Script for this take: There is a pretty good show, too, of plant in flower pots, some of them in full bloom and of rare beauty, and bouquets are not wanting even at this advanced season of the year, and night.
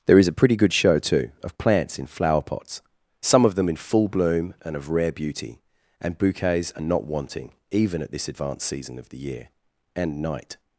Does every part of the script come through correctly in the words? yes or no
no